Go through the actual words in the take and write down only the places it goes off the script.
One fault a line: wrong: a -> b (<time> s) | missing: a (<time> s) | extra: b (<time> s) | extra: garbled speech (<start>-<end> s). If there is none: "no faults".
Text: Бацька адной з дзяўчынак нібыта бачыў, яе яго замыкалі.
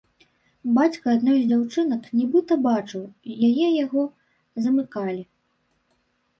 no faults